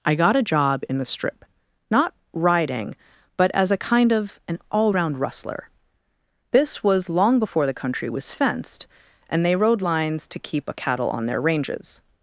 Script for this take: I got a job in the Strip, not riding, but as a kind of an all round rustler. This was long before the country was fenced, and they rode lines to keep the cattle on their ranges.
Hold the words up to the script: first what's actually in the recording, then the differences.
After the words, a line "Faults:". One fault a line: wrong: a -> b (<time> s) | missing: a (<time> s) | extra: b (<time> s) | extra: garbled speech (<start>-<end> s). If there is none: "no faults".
I got a job in the Strip, not riding, but as a kind of an all round rustler. This was long before the country was fenced, and they rode lines to keep a cattle on their ranges.
Faults:
wrong: the -> a (10.7 s)